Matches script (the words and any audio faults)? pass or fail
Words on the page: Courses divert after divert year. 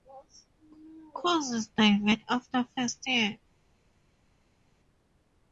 fail